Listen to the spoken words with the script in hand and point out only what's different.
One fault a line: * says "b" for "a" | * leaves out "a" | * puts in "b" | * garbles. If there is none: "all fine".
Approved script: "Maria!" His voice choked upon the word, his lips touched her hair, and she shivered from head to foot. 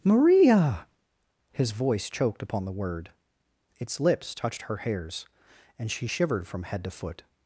* says "its" for "his"
* says "hairs" for "hair"